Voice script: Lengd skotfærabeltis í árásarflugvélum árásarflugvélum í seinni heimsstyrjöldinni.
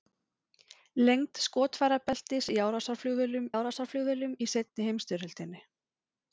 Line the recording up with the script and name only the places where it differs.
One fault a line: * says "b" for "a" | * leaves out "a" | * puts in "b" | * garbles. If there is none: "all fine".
all fine